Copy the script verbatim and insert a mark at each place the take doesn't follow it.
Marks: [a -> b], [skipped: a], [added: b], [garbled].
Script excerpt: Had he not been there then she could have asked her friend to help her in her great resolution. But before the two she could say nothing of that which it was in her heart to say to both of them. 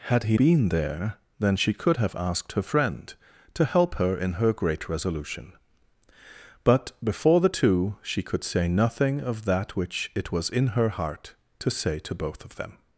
Had he [skipped: not] been there then she could have asked her friend to help her in her great resolution. But before the two she could say nothing of that which it was in her heart to say to both of them.